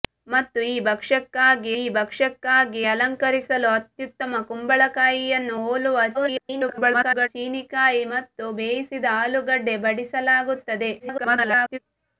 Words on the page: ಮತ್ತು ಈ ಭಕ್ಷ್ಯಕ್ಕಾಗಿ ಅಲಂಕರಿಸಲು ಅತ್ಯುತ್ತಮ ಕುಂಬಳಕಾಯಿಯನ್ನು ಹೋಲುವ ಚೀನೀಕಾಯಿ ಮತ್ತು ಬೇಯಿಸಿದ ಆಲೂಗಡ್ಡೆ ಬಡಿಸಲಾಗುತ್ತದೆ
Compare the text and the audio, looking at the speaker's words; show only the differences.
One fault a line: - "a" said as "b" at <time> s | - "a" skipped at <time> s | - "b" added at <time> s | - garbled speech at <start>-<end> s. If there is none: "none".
- "ಈ ಭಕ್ಷ್ಯಕ್ಕಾಗಿ" added at 1.7 s
- garbled speech at 6.1-7.3 s
- garbled speech at 11.0-11.8 s